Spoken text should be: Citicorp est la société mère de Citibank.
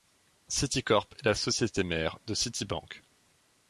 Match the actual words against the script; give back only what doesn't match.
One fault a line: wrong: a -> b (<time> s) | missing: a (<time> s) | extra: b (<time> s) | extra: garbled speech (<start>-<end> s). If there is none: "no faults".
no faults